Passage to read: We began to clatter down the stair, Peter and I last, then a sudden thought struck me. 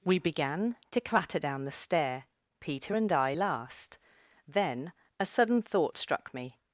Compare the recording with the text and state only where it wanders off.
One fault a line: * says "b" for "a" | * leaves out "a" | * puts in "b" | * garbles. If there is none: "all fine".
all fine